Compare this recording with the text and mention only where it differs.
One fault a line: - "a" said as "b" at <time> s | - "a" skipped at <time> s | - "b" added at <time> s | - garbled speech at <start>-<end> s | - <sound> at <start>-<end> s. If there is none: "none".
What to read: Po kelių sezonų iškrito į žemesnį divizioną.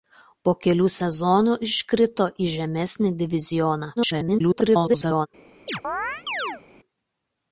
- garbled speech at 4.0-5.3 s
- chirp at 5.7-6.6 s